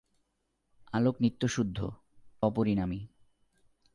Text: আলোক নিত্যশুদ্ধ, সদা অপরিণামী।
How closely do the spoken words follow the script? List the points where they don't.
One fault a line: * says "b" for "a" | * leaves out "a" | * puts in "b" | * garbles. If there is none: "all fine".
* leaves out "সদা"